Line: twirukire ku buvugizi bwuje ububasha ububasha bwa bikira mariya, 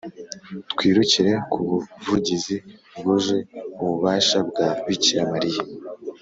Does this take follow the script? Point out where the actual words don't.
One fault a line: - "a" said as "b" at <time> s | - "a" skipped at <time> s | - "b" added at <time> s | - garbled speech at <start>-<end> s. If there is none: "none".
- "ububasha" skipped at 4.4 s